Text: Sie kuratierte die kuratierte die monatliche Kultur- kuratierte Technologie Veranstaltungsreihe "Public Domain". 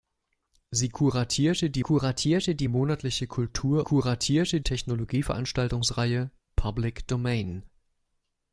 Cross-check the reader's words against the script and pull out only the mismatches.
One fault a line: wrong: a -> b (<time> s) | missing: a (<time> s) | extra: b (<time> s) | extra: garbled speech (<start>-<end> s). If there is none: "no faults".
no faults